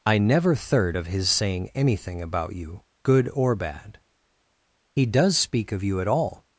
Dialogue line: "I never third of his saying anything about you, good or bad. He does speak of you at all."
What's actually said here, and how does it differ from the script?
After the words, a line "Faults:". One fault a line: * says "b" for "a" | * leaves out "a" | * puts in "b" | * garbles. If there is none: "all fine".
"I never third of his saying anything about you, good or bad. He does speak of you at all."
Faults:
all fine